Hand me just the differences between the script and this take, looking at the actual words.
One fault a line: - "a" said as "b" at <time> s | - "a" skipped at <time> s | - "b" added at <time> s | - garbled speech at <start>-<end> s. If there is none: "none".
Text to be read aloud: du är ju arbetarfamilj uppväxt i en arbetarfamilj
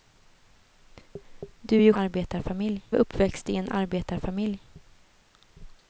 none